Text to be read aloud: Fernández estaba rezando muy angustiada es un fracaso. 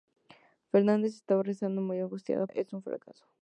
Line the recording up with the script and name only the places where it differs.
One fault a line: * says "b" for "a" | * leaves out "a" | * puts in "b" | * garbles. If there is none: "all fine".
all fine